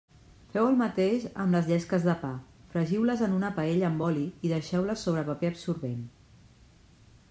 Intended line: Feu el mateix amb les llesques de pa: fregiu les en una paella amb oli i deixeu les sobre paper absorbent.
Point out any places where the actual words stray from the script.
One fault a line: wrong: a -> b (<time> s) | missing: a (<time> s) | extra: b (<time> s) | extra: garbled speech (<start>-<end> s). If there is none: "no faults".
no faults